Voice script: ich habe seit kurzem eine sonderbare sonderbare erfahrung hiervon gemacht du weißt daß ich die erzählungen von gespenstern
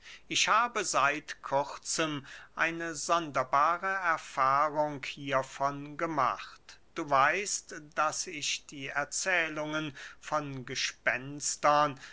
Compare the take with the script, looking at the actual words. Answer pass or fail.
fail